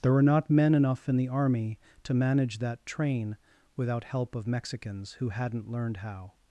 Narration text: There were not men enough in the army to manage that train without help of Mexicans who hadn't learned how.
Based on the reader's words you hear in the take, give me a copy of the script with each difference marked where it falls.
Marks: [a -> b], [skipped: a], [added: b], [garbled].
There were not men enough in the army to manage that train without help of Mexicans who hadn't learned how.